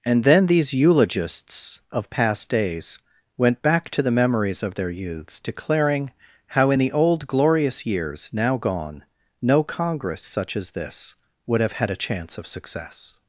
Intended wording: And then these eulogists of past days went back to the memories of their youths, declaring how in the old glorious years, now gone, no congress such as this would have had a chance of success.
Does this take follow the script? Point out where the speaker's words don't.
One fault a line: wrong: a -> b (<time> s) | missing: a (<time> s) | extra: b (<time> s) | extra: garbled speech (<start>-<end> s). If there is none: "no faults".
no faults